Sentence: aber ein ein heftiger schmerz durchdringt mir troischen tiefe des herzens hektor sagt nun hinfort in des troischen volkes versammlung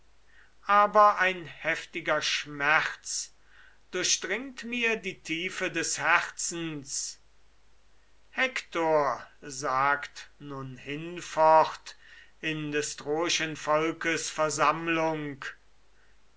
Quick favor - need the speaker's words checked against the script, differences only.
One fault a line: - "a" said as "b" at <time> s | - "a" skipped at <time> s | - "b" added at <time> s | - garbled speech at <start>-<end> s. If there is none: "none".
- "ein" skipped at 1.4 s
- "troischen" said as "die" at 5.0 s